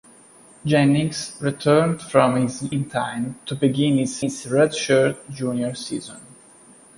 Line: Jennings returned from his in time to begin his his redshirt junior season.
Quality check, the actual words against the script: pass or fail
pass